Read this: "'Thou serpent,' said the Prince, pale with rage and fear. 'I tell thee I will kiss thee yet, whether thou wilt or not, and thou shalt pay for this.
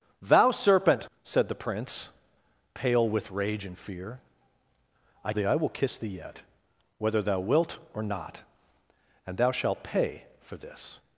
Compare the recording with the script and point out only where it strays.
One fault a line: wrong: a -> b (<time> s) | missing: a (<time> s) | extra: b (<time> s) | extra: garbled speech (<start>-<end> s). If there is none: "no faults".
missing: tell (5.3 s)